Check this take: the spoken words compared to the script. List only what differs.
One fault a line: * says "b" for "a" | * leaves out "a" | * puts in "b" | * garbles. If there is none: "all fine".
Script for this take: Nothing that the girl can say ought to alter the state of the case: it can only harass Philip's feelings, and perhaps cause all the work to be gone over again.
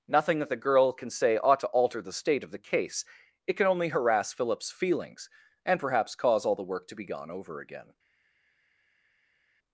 all fine